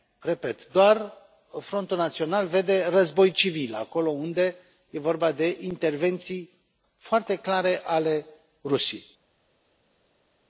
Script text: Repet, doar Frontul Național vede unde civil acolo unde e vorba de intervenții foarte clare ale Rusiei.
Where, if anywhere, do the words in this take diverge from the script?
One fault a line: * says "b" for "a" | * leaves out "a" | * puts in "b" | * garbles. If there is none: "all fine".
* says "război" for "unde"